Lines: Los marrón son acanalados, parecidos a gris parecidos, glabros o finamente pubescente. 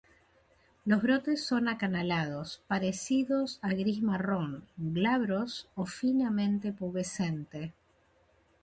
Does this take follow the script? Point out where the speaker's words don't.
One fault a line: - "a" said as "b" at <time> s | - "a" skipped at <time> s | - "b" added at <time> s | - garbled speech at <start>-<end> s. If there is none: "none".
- "marrón" said as "brotes" at 1.0 s
- "parecidos" said as "marrón" at 4.0 s